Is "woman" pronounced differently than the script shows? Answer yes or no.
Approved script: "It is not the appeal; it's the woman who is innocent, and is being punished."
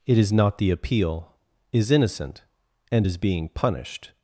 yes